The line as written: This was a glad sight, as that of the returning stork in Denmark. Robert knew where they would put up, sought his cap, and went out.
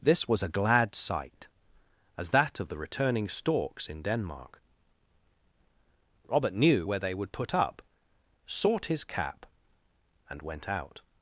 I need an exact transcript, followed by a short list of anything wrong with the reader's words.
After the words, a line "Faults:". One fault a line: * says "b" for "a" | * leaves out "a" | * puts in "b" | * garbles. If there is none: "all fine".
This was a glad sight, as that of the returning storks in Denmark. Robert knew where they would put up, sought his cap, and went out.
Faults:
* says "storks" for "stork"